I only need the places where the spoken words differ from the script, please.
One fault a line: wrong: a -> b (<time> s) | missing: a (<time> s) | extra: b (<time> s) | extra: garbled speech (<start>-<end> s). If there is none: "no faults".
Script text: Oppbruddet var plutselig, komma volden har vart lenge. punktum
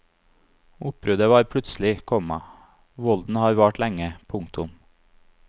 no faults